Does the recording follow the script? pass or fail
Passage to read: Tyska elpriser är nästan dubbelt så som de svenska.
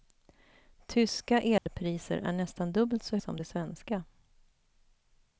pass